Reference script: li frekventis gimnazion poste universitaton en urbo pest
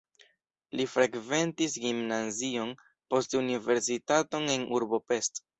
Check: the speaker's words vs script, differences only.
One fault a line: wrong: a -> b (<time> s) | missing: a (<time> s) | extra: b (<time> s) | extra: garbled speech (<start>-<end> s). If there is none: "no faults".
no faults